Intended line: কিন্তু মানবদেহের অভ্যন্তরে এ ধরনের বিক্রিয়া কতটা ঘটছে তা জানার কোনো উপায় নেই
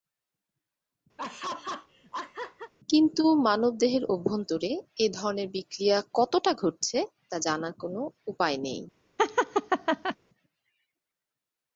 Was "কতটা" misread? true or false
false